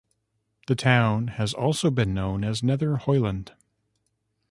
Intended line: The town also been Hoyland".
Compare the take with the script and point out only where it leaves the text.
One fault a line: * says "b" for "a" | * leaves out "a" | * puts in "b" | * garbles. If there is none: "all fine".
* puts in "has"
* puts in "known as Nether"